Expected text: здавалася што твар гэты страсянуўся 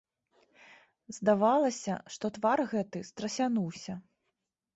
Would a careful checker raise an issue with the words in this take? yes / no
no